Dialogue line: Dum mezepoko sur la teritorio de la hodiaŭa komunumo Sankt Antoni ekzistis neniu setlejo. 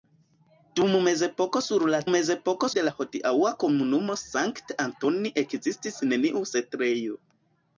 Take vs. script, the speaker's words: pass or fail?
fail